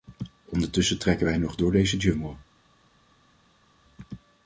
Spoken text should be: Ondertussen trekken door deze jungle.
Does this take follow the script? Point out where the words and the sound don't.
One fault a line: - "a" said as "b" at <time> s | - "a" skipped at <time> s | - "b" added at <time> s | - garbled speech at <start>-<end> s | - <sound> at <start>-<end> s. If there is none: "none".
- "wij nog" added at 1.2 s